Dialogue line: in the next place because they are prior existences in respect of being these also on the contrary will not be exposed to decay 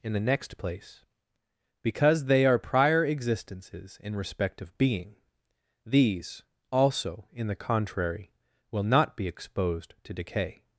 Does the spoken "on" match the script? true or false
false